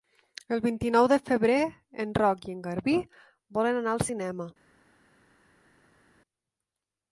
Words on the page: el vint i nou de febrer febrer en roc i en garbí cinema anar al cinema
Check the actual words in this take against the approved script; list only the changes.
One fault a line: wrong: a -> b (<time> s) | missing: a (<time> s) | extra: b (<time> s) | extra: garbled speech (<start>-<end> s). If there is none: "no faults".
missing: febrer (1.6 s)
wrong: cinema -> volen (3.6 s)